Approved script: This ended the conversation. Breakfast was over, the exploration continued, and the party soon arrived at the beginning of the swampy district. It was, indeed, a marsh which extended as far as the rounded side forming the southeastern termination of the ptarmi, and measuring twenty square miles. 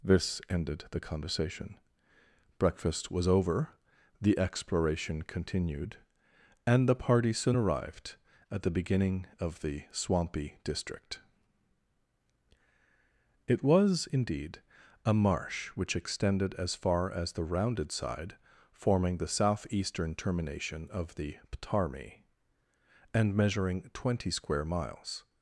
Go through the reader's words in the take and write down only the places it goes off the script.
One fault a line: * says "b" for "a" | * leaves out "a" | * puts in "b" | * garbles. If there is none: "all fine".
all fine